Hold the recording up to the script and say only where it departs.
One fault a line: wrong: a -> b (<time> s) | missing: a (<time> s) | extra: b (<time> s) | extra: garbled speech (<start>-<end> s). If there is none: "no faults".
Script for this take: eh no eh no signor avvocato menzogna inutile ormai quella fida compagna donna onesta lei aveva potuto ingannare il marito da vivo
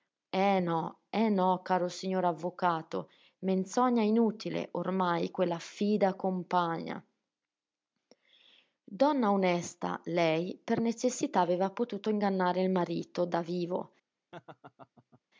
extra: caro (1.6 s)
extra: per necessità (10.6 s)